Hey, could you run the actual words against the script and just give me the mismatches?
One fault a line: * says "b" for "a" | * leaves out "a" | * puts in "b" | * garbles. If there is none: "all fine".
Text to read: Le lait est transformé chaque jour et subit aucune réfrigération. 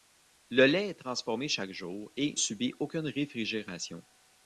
all fine